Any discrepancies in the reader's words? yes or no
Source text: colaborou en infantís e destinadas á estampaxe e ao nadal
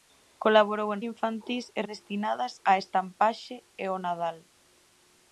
no